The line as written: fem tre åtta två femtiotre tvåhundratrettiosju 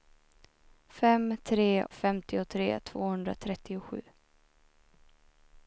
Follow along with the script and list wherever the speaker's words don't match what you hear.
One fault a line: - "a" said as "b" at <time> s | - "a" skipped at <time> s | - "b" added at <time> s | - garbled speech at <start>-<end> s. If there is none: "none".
- "åtta två" skipped at 1.9 s